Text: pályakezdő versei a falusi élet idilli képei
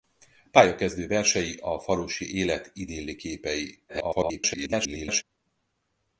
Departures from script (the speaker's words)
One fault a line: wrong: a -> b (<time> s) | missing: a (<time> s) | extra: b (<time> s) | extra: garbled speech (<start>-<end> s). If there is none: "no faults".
extra: garbled speech (3.9-5.2 s)